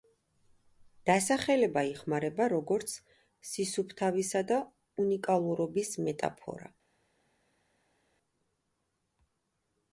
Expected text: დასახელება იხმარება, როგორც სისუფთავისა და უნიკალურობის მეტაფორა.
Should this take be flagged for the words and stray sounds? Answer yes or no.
no